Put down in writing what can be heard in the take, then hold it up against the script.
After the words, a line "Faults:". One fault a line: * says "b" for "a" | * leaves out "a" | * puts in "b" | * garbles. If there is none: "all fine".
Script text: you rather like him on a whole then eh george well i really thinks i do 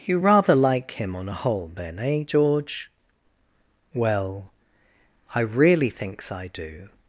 you rather like him on a whole then eh george well i really thinks i do
Faults:
all fine